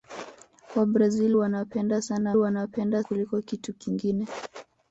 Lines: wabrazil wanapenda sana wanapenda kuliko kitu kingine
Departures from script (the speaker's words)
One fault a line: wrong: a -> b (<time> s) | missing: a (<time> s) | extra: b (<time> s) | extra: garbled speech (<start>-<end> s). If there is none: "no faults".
no faults